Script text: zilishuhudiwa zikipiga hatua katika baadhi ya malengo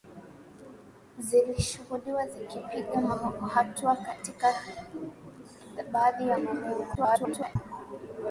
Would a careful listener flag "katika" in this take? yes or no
no